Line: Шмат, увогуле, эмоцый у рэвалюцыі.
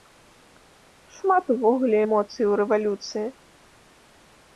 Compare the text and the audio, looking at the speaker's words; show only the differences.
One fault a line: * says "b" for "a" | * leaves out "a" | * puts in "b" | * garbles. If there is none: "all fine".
all fine